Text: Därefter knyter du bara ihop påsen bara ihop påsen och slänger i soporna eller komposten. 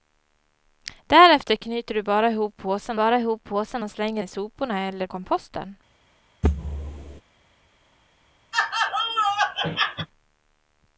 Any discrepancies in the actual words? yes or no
no